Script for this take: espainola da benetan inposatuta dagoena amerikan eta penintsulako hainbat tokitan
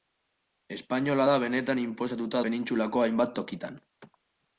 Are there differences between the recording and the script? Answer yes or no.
yes